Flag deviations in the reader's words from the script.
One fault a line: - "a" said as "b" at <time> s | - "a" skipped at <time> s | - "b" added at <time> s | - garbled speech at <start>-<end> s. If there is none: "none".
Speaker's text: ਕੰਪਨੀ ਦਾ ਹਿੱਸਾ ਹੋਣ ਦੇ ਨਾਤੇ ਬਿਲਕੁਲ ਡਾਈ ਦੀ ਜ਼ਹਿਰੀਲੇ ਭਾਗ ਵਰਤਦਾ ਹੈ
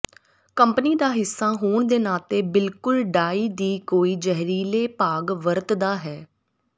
- "ਕੋਈ" added at 3.9 s